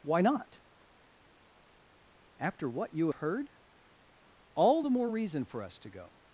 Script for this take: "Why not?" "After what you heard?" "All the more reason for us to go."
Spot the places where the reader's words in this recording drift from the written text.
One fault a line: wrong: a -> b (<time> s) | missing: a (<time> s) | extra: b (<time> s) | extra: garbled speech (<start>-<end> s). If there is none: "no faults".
no faults